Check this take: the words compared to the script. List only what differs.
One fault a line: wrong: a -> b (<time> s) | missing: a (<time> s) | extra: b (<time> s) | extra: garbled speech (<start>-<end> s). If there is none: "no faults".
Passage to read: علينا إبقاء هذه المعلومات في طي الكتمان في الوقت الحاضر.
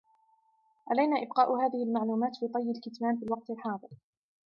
no faults